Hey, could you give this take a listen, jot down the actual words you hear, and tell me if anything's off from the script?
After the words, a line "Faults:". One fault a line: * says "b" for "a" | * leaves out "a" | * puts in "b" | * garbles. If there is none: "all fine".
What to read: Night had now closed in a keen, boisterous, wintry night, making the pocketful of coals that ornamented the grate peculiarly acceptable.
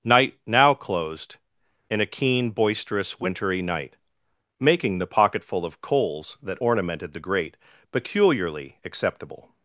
Night now closed in a keen, boisterous, wintry night, making the pocketful of coals that ornamented the grate peculiarly acceptable.
Faults:
* leaves out "had"